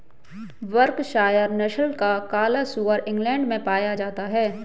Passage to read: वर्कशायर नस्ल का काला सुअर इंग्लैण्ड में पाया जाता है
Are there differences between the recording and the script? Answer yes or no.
no